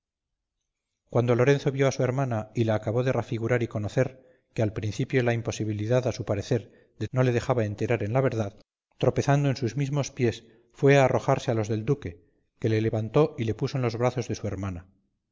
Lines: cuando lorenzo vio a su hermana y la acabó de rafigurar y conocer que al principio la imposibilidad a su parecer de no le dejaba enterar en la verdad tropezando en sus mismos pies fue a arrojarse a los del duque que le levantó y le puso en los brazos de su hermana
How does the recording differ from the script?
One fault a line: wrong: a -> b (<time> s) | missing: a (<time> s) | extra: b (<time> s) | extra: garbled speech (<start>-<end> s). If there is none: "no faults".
no faults